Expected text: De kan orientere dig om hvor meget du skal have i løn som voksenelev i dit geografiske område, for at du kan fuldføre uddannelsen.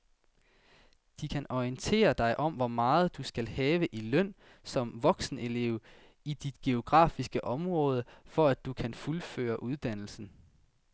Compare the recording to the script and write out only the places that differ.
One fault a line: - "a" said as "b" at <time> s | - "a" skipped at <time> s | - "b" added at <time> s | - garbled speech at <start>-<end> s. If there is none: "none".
none